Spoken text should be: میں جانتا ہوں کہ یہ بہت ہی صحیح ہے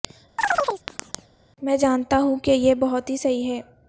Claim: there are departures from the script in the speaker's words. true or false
false